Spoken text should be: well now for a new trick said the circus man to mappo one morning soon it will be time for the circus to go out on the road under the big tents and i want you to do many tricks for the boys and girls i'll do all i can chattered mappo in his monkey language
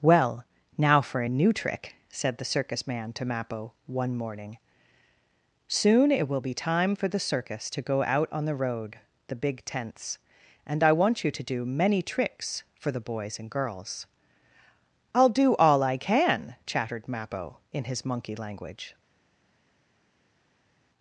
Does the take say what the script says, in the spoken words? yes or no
no